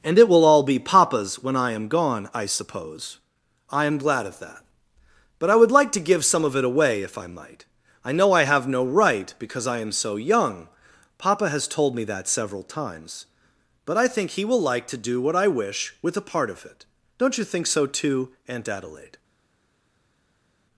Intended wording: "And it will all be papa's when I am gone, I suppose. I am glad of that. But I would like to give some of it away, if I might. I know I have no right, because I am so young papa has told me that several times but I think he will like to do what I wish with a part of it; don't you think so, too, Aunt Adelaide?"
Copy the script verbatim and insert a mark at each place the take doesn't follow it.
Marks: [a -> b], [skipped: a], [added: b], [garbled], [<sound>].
"And it will all be papa's when I am gone, I suppose. I am glad of that. But I would like to give some of it away, if I might. I know I have no right, because I am so young papa has told me that several times but I think he will like to do what I wish with a part of it; don't you think so, too, Aunt Adelaide?"